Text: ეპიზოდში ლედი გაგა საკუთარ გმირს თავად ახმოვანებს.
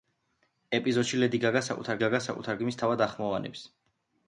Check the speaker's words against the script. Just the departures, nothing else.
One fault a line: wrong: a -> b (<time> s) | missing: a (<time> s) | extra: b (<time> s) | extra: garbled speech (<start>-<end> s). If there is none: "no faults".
extra: გაგა საკუთარ (2.0 s)